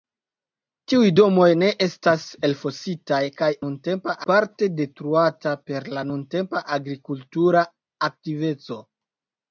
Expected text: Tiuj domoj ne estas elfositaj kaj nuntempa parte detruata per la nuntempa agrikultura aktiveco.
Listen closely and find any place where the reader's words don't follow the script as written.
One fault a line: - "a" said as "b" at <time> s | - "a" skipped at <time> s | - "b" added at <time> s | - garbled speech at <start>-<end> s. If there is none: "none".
none